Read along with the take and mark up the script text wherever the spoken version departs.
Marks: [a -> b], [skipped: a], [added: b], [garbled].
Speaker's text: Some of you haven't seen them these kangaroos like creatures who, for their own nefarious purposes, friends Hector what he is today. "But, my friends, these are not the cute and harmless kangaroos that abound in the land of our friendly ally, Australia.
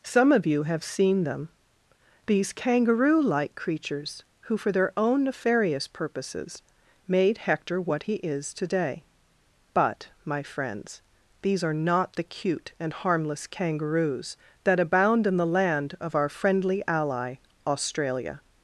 Some of you [haven't -> have] seen them these [kangaroos -> kangaroo] like creatures who, for their own nefarious purposes, [friends -> made] Hector what he is today. "But, my friends, these are not the cute and harmless kangaroos that abound in the land of our friendly ally, Australia.